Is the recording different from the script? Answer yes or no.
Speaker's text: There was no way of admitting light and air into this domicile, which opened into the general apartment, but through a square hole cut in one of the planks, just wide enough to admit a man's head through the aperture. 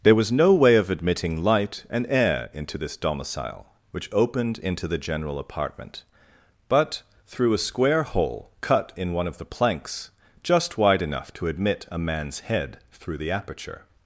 no